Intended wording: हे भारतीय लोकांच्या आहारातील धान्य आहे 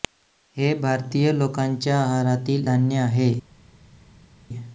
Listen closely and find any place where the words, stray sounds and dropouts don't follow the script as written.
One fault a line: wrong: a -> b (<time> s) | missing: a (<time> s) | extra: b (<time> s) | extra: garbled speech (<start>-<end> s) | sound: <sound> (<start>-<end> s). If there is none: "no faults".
no faults